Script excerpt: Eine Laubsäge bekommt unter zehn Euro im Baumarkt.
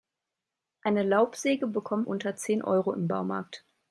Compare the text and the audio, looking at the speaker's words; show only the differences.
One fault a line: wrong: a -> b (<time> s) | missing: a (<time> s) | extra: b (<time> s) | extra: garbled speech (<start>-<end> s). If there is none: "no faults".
no faults